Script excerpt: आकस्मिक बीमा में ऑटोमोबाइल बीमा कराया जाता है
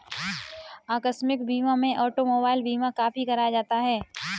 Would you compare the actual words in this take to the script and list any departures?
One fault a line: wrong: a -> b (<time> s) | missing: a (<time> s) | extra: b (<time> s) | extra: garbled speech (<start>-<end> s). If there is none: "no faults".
extra: काफी (2.9 s)